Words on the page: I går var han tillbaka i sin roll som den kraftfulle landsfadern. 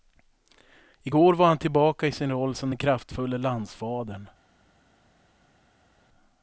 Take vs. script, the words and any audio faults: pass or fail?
pass